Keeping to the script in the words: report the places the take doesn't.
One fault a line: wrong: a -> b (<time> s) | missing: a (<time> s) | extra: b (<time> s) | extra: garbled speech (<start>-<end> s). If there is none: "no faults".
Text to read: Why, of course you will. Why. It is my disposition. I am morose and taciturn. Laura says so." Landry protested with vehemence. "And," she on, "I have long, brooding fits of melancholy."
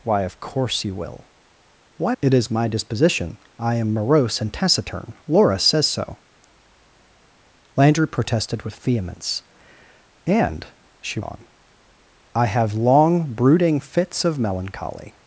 no faults